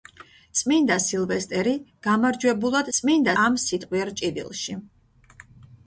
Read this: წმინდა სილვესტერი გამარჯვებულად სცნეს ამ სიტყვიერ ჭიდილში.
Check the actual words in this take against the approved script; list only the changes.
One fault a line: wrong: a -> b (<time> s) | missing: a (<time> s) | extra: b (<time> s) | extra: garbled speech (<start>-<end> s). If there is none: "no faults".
wrong: სცნეს -> წმინდა (3.0 s)